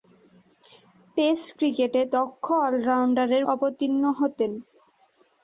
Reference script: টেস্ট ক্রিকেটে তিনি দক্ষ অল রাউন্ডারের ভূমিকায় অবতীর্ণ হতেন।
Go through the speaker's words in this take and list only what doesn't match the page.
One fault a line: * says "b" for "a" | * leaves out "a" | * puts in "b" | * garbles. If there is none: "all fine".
* leaves out "তিনি"
* leaves out "ভূমিকায়"